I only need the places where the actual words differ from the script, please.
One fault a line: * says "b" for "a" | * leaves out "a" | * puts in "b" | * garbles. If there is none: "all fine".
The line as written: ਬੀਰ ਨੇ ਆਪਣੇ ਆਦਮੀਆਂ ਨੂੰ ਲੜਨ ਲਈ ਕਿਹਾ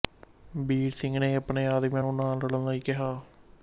* puts in "ਸਿੰਘ"
* puts in "ਨਾ"